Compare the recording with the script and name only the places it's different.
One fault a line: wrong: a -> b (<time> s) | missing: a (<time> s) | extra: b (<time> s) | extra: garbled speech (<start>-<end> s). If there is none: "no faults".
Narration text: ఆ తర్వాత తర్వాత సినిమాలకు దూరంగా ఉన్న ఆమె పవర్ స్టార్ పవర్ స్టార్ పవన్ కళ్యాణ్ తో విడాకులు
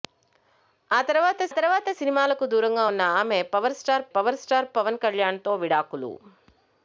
no faults